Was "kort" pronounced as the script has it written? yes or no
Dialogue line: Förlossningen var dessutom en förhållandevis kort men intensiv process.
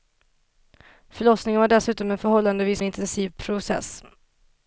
no